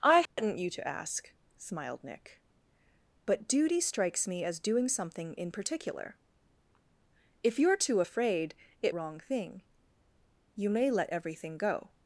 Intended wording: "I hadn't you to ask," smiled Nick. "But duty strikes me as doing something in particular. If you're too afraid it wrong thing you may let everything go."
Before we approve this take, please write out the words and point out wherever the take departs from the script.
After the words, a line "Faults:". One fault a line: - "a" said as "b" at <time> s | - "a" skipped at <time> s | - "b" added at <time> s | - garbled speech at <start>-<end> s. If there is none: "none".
"I hadn't you to ask," smiled Nick. "But duty strikes me as doing something in particular. If you're too afraid it wrong thing you may let everything go."
Faults:
none